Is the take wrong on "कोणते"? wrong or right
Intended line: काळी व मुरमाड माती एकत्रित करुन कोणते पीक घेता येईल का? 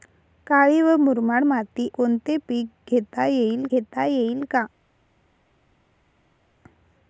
wrong